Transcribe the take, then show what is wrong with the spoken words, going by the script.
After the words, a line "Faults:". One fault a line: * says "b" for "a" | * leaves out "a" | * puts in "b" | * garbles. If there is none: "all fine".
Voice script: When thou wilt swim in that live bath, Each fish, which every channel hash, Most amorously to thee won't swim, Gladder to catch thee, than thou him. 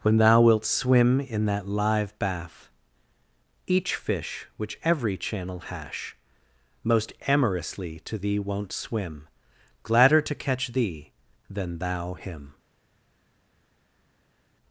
When thou wilt swim in that live bath, Each fish, which every channel hash, Most amorously to thee won't swim, Gladder to catch thee, than thou him.
Faults:
all fine